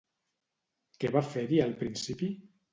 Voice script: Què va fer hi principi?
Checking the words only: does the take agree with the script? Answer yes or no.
no